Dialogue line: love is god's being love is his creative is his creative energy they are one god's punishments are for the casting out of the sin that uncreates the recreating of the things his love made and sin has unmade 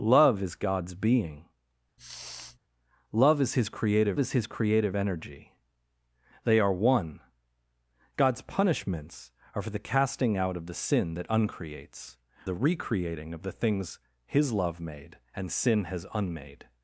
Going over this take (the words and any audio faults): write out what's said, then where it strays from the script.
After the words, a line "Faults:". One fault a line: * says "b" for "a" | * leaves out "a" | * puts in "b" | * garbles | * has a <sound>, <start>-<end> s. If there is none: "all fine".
love is god's being love is his creative is his creative energy they are one god's punishments are for the casting out of the sin that uncreates the recreating of the things his love made and sin has unmade
Faults:
* has a sniff, 2.0-2.6 s